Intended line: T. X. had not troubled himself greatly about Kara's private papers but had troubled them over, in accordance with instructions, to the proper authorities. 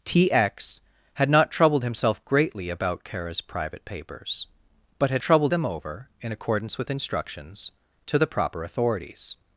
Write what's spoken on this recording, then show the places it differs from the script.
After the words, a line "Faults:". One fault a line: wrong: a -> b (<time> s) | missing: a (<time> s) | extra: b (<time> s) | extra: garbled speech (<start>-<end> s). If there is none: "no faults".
T. X. had not troubled himself greatly about Kara's private papers but had troubled them over, in accordance with instructions, to the proper authorities.
Faults:
no faults